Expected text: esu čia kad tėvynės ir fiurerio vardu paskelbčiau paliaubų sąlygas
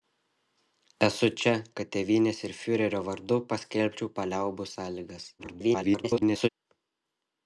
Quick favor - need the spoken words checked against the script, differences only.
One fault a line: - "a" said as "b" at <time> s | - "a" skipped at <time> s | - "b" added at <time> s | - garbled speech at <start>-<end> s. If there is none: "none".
- garbled speech at 5.4-6.5 s